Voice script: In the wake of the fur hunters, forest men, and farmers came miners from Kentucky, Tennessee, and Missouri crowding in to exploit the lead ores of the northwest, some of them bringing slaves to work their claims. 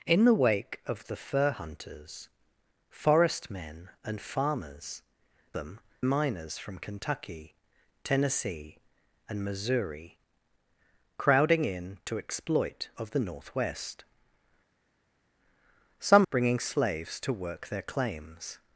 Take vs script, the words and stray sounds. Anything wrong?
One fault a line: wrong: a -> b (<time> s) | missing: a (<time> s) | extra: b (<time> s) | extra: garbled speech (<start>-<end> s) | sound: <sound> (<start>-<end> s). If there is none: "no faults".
wrong: came -> them (5.5 s)
missing: the lead ores (12.9 s)
missing: of them (16.3 s)